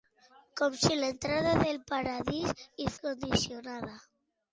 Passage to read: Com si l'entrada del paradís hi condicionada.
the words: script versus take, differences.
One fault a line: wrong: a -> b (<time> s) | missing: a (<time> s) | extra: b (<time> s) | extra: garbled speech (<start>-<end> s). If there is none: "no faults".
no faults